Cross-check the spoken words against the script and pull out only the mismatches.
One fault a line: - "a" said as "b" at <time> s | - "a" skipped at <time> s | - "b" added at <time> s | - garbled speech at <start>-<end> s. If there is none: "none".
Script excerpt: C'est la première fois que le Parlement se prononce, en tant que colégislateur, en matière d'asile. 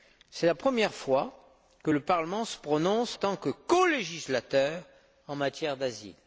- "en" skipped at 3.2 s